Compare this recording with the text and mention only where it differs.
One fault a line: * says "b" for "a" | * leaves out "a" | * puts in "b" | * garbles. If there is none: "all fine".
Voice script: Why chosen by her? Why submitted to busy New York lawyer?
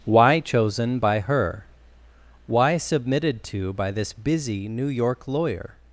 * puts in "by this"